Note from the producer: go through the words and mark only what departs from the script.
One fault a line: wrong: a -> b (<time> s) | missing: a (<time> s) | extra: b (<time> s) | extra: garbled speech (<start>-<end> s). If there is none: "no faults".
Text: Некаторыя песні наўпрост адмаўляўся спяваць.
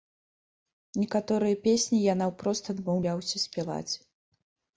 extra: я (2.0 s)